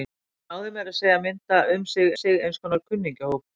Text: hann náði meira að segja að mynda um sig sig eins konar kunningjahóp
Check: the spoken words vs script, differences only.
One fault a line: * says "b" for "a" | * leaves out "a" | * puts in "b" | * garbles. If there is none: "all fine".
all fine